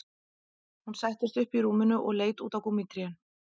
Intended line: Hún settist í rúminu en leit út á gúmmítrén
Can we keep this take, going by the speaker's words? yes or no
no